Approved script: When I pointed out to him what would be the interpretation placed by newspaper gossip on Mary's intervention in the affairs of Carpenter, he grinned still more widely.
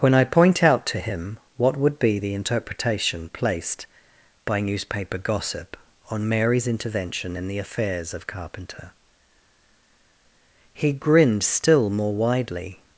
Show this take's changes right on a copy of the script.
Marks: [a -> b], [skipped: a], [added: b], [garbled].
When I [pointed -> point] out to him what would be the interpretation placed by newspaper gossip on Mary's intervention in the affairs of Carpenter, he grinned still more widely.